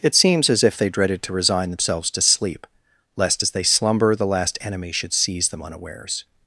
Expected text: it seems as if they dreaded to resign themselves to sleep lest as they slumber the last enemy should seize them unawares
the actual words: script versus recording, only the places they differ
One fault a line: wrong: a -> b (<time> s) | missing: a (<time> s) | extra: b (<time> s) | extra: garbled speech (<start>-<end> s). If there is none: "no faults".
no faults